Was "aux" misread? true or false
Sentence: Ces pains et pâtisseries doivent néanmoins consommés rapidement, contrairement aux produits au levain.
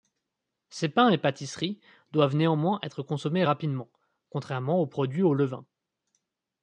false